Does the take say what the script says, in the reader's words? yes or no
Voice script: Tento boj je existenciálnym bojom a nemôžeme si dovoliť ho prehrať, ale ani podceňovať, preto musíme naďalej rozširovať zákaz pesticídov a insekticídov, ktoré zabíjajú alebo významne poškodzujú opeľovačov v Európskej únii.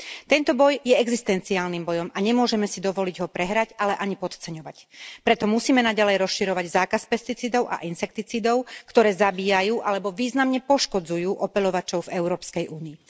yes